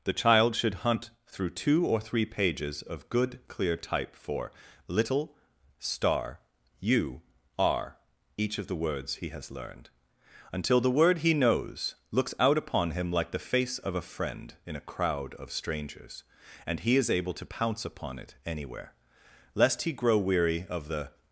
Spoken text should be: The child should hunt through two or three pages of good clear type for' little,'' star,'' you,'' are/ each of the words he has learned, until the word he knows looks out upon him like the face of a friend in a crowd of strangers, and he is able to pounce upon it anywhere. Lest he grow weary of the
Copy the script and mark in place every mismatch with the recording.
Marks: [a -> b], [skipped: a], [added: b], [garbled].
The child should hunt through two or three pages of good clear type for' little,'' star,'' you,'' are/ each of the words he has learned, until the word he knows looks out upon him like the face of a friend in a crowd of strangers, and he is able to pounce upon it anywhere. Lest he grow weary of the